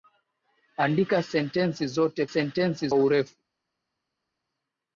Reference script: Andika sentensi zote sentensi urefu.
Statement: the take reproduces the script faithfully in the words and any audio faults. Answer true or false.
true